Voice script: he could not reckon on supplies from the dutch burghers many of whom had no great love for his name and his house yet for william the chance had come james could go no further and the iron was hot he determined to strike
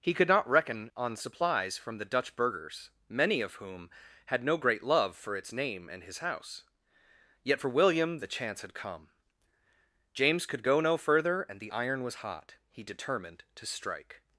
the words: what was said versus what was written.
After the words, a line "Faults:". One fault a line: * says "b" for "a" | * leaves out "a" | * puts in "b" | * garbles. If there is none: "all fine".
he could not reckon on supplies from the dutch burghers many of whom had no great love for its name and his house yet for william the chance had come james could go no further and the iron was hot he determined to strike
Faults:
* says "its" for "his"